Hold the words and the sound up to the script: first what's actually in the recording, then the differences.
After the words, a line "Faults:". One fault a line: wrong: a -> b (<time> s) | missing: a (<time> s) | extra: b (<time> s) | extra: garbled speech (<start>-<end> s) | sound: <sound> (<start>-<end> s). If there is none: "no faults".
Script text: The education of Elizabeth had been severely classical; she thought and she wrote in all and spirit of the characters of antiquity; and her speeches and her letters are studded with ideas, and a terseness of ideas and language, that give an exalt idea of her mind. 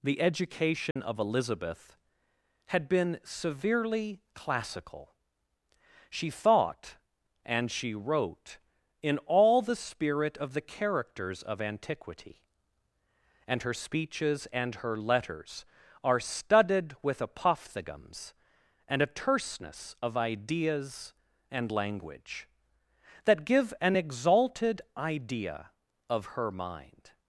The education of Elizabeth had been severely classical; she thought and she wrote in all the spirit of the characters of antiquity; and her speeches and her letters are studded with apophthegms, and a terseness of ideas and language, that give an exalted idea of her mind.
Faults:
sound: dropout (0.9-1.0 s)
wrong: and -> the (9.6 s)
wrong: ideas -> apophthegms (17.2 s)
wrong: exalt -> exalted (23.9 s)